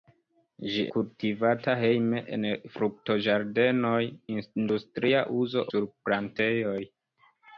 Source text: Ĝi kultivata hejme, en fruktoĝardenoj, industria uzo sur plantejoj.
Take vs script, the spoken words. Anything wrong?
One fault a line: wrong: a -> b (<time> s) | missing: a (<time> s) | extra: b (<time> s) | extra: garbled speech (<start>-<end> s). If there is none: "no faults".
no faults